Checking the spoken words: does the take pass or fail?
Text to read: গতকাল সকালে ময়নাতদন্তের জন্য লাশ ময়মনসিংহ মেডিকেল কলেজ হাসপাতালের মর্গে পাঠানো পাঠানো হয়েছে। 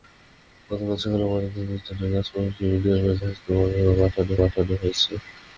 pass